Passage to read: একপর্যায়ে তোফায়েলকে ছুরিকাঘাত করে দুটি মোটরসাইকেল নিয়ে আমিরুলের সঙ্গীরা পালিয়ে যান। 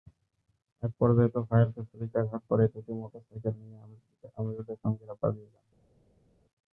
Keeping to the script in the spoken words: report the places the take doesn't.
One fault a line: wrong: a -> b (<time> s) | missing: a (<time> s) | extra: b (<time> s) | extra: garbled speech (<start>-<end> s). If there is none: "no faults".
no faults